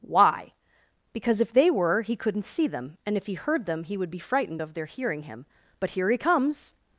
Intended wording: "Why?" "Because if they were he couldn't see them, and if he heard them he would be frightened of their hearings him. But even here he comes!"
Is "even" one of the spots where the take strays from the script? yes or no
yes